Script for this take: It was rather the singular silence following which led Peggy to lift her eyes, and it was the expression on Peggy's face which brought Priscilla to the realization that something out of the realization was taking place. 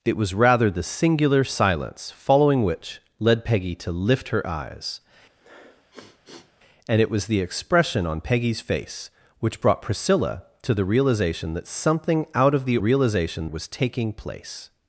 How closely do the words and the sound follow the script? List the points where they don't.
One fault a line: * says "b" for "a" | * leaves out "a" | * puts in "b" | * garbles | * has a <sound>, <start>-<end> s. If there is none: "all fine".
* has a sniff, 5.4-6.5 s